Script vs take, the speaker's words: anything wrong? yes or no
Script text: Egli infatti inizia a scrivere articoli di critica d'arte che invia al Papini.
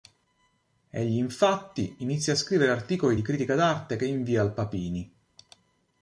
no